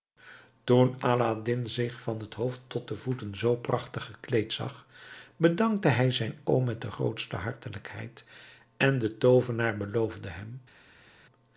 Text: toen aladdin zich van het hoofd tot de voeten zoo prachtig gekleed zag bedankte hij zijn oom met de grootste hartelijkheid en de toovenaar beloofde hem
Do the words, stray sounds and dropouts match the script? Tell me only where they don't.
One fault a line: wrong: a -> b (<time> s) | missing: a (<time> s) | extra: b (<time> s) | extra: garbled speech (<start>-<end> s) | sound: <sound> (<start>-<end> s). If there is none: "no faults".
no faults